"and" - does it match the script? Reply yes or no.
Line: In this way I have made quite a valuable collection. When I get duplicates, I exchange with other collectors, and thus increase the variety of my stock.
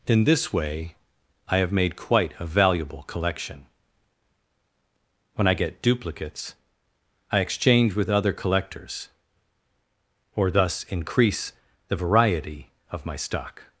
no